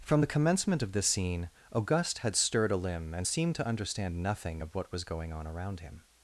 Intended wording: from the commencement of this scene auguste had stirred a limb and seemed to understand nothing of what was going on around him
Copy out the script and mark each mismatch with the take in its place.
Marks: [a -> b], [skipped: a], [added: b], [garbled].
from the commencement of this scene auguste had stirred a limb and seemed to understand nothing of what was going on around him